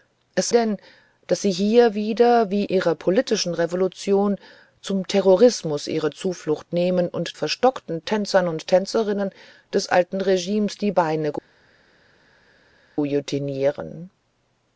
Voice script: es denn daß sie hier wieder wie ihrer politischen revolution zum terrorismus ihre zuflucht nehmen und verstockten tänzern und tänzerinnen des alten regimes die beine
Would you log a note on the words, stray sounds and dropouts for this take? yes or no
no